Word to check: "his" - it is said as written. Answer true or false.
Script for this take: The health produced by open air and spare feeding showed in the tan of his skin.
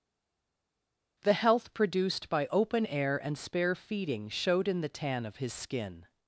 true